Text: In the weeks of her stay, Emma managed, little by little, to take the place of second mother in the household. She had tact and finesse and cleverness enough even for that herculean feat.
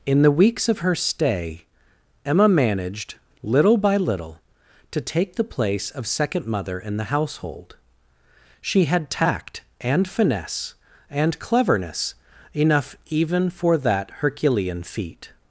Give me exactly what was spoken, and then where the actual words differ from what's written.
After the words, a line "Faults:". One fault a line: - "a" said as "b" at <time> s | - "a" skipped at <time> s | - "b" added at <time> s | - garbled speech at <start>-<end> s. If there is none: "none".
In the weeks of her stay, Emma managed, little by little, to take the place of second mother in the household. She had tact and finesse and cleverness enough even for that herculean feat.
Faults:
none